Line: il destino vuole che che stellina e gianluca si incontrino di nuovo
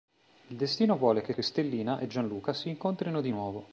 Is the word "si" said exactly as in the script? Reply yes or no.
yes